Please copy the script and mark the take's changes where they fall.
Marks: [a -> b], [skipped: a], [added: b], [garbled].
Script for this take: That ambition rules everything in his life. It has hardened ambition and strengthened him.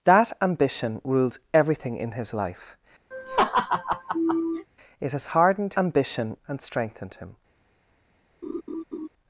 That ambition rules everything in his life. It has hardened ambition and strengthened him.